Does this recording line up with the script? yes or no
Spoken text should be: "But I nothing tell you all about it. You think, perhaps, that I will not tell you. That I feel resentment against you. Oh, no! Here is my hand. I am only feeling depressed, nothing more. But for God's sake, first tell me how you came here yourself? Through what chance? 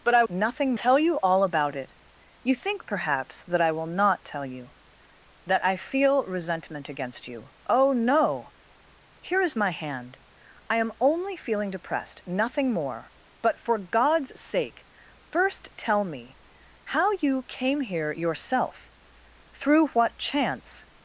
yes